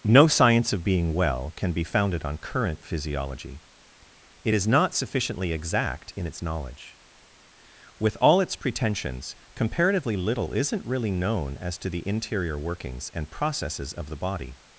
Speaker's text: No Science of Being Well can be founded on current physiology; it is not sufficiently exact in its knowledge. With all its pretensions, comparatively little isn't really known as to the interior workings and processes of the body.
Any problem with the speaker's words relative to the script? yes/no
no